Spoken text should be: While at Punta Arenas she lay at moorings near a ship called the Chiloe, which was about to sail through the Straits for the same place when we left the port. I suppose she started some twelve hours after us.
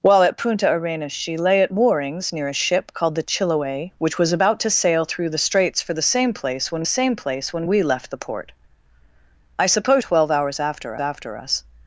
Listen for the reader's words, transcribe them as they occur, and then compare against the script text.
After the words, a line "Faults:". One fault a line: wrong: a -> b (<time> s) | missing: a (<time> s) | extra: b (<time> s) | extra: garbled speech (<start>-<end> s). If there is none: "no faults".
While at Punta Arenas she lay at moorings near a ship called the Chiloe, which was about to sail through the Straits for the same place when same place when we left the port. I suppose twelve hours after after us.
Faults:
extra: same place when (6.8 s)
missing: she started some (10.0 s)
extra: after (11.0 s)